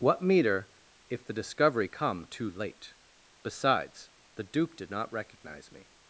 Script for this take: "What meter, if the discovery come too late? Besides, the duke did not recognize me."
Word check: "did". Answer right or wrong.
right